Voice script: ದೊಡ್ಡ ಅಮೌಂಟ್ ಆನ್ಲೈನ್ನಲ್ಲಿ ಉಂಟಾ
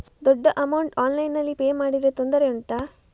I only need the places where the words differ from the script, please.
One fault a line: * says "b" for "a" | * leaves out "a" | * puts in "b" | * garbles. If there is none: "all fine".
* puts in "ಪೇ ಮಾಡಿದ್ರೆ ತೊಂದರೆ"